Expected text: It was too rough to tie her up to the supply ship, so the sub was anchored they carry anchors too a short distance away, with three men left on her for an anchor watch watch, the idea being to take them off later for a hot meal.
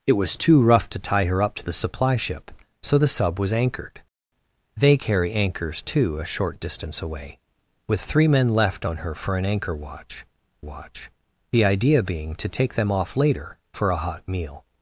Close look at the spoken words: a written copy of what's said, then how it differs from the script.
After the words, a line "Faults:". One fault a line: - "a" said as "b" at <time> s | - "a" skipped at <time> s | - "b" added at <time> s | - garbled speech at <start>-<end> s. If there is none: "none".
It was too rough to tie her up to the supply ship, so the sub was anchored they carry anchors too a short distance away, with three men left on her for an anchor watch watch, the idea being to take them off later for a hot meal.
Faults:
none